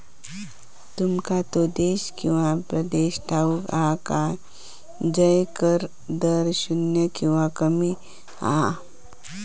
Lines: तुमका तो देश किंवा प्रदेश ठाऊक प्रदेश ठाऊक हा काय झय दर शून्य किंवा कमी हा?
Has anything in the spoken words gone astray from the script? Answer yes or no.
yes